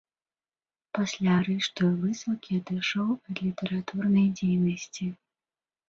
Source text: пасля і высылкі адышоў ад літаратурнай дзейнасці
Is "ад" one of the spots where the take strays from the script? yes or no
no